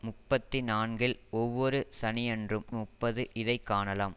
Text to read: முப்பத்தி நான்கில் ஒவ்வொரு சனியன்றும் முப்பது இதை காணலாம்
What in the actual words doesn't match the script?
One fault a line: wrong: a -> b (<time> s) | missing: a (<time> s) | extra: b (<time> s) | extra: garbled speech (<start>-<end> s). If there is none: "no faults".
no faults